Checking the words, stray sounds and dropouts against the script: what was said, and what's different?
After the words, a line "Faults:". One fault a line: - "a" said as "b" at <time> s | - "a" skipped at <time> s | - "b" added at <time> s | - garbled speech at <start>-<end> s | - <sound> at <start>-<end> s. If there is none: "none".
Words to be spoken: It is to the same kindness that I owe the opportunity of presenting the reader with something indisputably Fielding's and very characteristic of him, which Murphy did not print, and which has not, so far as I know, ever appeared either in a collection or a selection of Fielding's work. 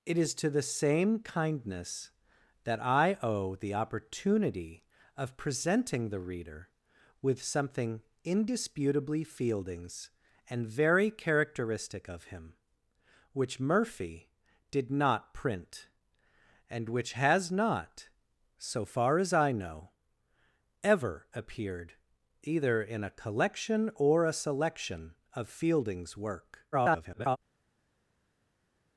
It is to the same kindness that I owe the opportunity of presenting the reader with something indisputably Fielding's and very characteristic of him, which Murphy did not print, and which has not, so far as I know, ever appeared either in a collection or a selection of Fielding's work. [garbled]
Faults:
- garbled speech at 26.7-27.4 s